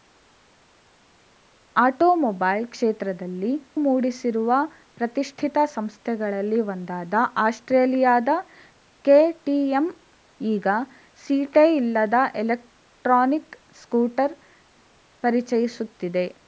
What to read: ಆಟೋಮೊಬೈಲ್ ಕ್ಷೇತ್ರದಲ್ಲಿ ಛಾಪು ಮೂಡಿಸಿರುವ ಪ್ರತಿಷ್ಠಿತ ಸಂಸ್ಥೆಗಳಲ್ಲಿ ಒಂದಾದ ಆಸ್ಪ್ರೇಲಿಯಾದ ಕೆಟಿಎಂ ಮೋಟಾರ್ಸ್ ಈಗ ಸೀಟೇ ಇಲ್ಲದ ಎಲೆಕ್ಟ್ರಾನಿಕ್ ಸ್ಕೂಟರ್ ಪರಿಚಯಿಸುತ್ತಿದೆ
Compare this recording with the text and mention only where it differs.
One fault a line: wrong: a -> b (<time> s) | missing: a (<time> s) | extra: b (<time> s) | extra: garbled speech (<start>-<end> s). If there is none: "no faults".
missing: ಛಾಪು (3.5 s)
missing: ಮೋಟಾರ್ಸ್ (9.9 s)